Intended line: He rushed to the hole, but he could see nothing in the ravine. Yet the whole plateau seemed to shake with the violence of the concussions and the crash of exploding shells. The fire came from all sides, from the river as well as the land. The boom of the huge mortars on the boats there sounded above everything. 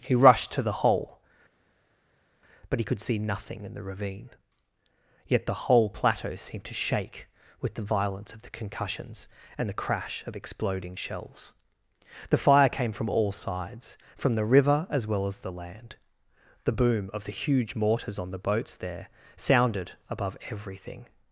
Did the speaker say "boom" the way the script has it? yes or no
yes